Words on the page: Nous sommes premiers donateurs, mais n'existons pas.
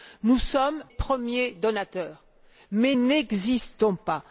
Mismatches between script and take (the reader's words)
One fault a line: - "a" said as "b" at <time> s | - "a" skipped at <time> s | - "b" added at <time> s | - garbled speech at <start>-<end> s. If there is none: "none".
none